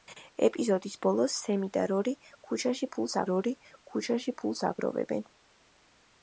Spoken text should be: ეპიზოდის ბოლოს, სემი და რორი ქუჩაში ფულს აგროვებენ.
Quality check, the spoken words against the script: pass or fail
fail